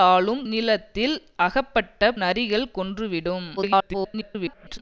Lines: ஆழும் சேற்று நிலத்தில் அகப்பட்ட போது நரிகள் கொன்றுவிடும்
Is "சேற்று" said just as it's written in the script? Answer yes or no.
no